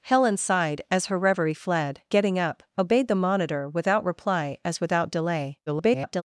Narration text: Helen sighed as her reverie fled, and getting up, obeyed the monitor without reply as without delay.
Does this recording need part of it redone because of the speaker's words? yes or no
yes